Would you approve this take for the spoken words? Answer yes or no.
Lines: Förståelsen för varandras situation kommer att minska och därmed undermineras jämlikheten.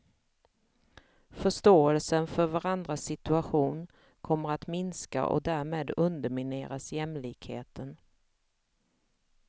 yes